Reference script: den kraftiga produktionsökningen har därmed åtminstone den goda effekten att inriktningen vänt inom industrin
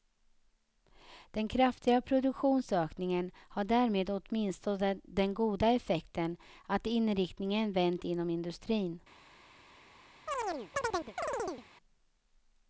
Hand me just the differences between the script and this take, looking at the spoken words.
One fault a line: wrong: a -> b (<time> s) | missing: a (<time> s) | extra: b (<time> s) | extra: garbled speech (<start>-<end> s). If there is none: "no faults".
no faults